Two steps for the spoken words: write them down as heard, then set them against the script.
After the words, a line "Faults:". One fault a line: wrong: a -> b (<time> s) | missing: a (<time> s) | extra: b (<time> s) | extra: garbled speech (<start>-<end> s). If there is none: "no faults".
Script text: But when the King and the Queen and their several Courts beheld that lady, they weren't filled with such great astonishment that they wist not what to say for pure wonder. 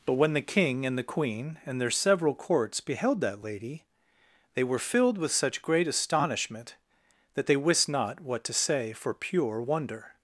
But when the King and the Queen and their several Courts beheld that lady, they were filled with such great astonishment that they wist not what to say for pure wonder.
Faults:
wrong: weren't -> were (4.6 s)